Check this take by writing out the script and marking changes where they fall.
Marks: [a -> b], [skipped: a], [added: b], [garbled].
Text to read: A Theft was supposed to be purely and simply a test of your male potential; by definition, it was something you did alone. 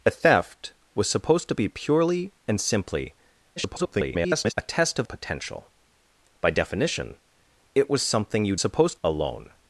A Theft was supposed to be purely and simply [garbled] a test of [skipped: your male] potential; by definition, it was something you [did -> supposed] alone.